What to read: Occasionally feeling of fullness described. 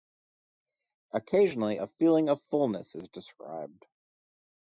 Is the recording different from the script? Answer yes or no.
yes